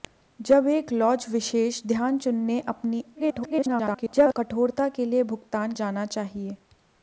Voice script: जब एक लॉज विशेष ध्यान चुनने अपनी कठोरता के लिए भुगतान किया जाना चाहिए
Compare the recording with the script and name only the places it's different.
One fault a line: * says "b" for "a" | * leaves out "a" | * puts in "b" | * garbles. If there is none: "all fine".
* garbles
* leaves out "किया"